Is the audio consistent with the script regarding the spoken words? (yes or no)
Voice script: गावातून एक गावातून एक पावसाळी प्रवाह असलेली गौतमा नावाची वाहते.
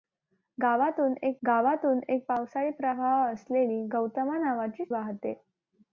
yes